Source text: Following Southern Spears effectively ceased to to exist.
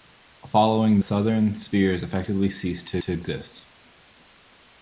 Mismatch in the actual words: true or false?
false